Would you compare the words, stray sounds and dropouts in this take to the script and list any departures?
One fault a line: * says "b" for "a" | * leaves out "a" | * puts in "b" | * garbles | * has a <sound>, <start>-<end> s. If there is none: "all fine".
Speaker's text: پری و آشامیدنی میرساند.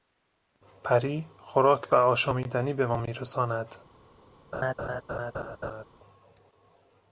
* puts in "خوراک"
* puts in "به ما"
* has a laugh, 4.5-5.9 s